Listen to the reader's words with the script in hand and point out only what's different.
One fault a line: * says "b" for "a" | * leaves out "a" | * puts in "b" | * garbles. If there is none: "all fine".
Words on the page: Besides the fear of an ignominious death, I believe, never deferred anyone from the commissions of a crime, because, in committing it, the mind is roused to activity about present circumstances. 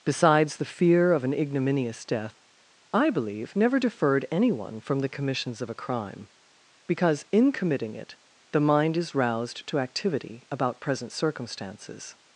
all fine